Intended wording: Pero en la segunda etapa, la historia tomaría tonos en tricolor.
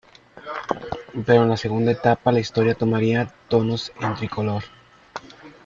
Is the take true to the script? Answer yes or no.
yes